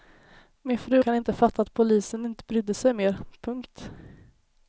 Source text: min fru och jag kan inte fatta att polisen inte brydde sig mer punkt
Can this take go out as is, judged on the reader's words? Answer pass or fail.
fail